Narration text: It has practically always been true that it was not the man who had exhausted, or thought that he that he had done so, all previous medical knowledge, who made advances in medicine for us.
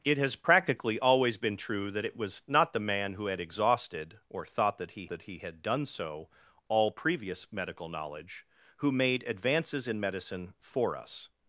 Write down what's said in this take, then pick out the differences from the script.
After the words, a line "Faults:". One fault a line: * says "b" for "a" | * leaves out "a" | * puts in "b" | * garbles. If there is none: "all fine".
It has practically always been true that it was not the man who had exhausted, or thought that he that he had done so, all previous medical knowledge, who made advances in medicine for us.
Faults:
all fine